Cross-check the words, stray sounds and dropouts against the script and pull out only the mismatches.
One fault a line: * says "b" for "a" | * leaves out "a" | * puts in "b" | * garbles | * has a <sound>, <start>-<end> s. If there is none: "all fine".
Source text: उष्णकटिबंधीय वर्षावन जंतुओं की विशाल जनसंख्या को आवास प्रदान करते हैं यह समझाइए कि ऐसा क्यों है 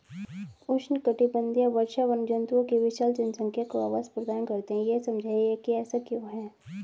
all fine